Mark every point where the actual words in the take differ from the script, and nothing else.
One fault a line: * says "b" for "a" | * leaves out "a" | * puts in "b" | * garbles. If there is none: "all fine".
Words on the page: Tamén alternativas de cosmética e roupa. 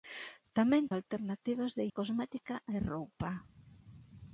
all fine